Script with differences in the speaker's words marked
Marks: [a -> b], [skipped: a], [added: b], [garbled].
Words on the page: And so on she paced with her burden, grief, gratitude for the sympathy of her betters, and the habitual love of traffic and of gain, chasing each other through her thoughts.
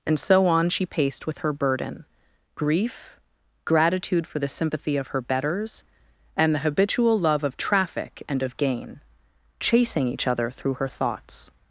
And so on she paced with her burden, grief, gratitude for the sympathy of her betters, and the habitual love of traffic and of gain, chasing each other through her thoughts.